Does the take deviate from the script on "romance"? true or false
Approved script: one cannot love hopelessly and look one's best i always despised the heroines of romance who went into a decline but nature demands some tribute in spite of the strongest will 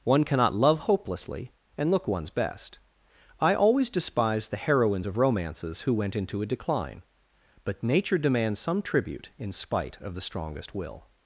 true